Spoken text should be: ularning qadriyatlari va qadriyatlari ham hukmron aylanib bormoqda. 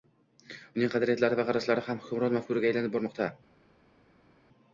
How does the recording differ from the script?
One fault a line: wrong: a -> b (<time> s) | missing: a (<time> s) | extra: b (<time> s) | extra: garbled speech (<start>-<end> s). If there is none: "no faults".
wrong: ularning -> uning (0.8 s)
wrong: qadriyatlari -> qarashlari (1.5 s)
extra: mafkuraga (2.4 s)